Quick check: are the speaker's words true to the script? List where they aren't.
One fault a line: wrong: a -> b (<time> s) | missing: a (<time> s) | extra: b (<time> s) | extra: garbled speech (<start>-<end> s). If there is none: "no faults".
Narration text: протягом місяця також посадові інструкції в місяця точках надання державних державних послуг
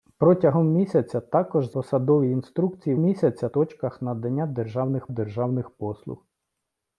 no faults